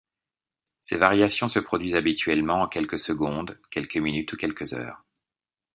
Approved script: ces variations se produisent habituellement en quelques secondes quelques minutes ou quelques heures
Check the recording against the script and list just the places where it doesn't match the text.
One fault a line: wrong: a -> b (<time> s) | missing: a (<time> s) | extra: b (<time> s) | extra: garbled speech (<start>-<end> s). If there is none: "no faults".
no faults